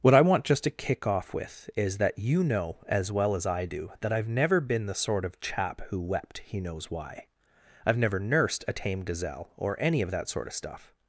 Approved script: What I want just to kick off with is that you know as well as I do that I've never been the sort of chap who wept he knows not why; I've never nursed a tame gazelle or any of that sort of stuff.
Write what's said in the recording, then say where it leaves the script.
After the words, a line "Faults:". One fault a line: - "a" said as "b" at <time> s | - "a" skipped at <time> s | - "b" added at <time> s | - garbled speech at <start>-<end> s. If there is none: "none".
What I want just to kick off with is that you know as well as I do that I've never been the sort of chap who wept he knows why; I've never nursed a tame gazelle or any of that sort of stuff.
Faults:
- "not" skipped at 6.9 s